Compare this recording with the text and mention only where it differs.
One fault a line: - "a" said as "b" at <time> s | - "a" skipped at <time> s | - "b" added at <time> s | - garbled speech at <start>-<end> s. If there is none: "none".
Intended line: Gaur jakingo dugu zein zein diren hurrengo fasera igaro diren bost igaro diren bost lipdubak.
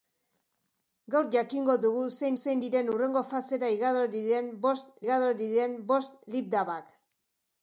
none